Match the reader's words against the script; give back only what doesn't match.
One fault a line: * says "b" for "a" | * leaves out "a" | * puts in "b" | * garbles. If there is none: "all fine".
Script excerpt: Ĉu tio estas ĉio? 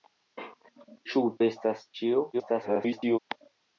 * leaves out "tio"
* garbles